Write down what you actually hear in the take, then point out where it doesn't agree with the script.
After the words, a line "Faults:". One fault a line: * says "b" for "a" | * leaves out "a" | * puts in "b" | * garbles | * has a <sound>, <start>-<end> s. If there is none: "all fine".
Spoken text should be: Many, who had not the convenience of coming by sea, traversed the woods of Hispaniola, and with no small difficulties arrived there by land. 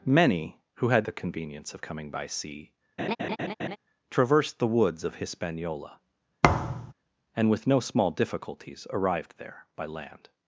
Many, who had the convenience of coming by sea, traversed the woods of Hispaniola, and with no small difficulties arrived there by land.
Faults:
* leaves out "not"
* has a laugh, 3.0-3.8 s
* has a thud, 6.4-6.9 s